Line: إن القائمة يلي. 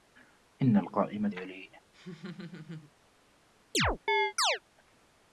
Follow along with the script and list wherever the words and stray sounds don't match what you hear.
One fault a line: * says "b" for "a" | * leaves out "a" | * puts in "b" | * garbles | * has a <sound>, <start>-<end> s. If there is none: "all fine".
* has a laugh, 1.9-2.9 s
* has a chirp, 3.7-4.6 s